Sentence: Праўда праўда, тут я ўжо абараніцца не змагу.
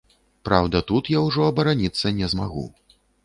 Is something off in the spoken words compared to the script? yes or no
yes